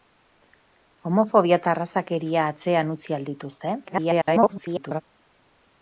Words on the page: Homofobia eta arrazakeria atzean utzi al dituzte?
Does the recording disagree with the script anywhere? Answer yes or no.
yes